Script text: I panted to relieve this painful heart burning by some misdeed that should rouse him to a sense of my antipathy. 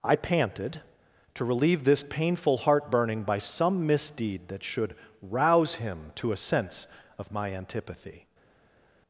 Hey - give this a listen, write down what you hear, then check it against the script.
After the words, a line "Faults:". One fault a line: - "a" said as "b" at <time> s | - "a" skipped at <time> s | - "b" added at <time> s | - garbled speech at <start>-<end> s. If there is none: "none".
I panted to relieve this painful heart burning by some misdeed that should rouse him to a sense of my antipathy.
Faults:
none